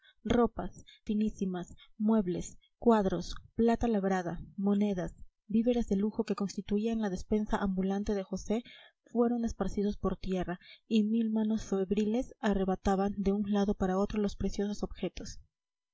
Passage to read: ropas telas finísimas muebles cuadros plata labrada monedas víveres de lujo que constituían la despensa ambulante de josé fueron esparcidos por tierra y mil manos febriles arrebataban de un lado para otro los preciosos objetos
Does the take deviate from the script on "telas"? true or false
true